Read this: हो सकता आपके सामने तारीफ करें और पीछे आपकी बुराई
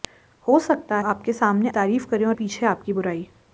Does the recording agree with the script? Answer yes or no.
yes